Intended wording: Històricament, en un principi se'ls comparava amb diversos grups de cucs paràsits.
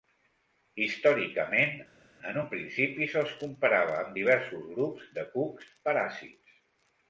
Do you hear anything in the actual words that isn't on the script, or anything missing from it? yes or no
no